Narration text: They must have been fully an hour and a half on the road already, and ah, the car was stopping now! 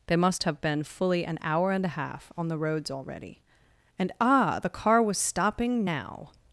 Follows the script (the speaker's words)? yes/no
no